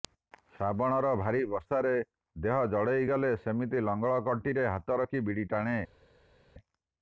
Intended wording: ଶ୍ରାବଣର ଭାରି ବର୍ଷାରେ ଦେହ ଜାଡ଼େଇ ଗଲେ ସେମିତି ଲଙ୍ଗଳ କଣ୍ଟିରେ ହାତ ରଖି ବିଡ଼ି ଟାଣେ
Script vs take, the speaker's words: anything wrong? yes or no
no